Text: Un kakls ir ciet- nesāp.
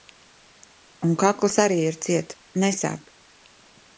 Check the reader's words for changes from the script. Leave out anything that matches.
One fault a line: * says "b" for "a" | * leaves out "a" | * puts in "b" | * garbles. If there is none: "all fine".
* puts in "arī"